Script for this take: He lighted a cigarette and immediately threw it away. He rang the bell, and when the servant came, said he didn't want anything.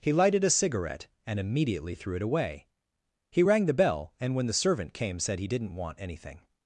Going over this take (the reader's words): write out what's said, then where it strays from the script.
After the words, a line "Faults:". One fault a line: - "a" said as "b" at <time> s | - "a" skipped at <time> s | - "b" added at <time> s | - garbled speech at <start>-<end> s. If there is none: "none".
He lighted a cigarette and immediately threw it away. He rang the bell, and when the servant came, said he didn't want anything.
Faults:
none